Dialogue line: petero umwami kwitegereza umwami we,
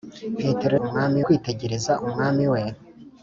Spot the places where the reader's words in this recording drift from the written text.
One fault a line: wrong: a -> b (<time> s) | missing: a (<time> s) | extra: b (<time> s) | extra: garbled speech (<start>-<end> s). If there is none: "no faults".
no faults